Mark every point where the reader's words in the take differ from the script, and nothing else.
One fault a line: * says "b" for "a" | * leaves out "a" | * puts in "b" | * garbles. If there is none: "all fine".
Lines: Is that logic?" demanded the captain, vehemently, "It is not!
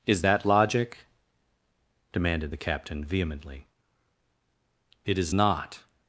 all fine